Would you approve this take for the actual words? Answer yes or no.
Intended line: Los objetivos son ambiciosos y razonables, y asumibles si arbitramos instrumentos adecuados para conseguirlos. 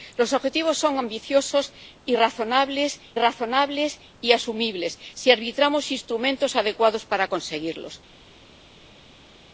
no